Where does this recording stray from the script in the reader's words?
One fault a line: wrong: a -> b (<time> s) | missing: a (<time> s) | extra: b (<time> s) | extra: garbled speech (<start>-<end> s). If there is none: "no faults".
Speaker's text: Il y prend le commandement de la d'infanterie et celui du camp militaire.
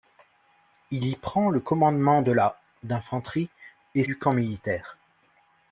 missing: celui (4.0 s)